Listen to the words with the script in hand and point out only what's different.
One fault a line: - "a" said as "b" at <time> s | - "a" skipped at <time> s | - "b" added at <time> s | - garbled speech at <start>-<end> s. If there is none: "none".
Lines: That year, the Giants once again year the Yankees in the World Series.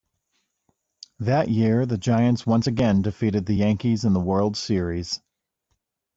- "year" said as "defeated" at 3.0 s